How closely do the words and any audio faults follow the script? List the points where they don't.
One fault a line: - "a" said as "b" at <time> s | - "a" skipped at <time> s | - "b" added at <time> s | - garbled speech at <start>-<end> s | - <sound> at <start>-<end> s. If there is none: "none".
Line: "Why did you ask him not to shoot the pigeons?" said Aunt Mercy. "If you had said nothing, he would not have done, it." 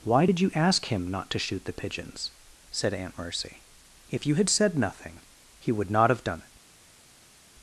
none